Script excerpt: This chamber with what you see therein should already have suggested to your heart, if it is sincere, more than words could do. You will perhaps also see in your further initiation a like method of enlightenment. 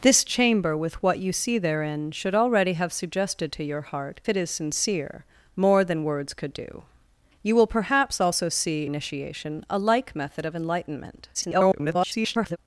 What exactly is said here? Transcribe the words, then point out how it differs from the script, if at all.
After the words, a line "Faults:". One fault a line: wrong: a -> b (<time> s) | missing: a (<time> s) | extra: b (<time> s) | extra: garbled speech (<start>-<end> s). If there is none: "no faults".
This chamber with what you see therein should already have suggested to your heart, it is sincere, more than words could do. You will perhaps also see initiation a like method of enlightenment. [garbled]
Faults:
missing: if (4.2 s)
missing: in your further (8.9 s)
extra: garbled speech (11.3-12.6 s)